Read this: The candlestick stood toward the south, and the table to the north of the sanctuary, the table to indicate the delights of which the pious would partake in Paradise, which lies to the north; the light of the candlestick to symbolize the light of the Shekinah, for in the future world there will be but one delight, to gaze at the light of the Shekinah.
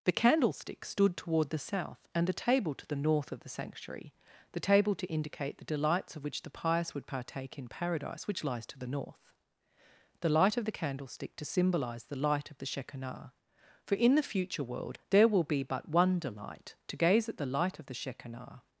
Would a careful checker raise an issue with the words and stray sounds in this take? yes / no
no